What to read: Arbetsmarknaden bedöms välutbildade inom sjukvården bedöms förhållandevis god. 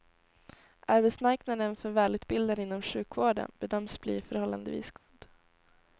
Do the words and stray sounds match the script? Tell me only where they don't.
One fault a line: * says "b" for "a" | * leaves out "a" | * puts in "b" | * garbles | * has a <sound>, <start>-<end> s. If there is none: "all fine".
* says "för" for "bedöms"
* puts in "bli"
* has a dropout, 5.0-5.1 s